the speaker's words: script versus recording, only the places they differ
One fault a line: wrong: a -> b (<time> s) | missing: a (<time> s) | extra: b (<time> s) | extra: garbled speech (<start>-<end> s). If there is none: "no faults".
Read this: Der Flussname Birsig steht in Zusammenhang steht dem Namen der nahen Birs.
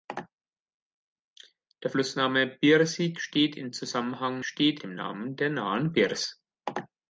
no faults